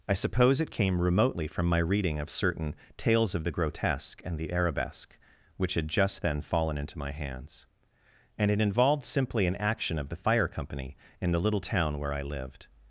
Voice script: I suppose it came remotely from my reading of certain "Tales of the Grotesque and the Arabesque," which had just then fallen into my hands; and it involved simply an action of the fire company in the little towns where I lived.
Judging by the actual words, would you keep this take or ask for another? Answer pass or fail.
fail